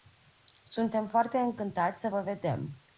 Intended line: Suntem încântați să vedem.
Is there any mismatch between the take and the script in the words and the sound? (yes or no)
yes